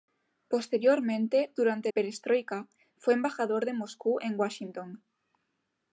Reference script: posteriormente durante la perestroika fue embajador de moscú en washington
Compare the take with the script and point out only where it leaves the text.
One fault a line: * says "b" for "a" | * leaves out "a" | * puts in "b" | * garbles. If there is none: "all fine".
* leaves out "la"